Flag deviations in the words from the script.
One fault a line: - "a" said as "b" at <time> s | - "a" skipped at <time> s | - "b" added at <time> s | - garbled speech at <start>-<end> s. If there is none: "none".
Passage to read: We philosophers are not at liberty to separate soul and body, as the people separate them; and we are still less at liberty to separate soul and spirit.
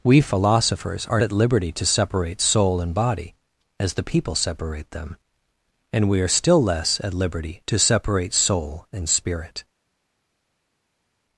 - "not" skipped at 1.2 s